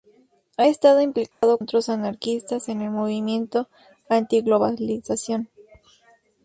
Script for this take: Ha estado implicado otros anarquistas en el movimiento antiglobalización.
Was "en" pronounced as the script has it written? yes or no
yes